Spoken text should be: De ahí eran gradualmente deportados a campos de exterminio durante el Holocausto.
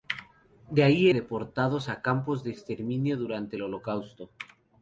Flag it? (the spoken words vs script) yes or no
yes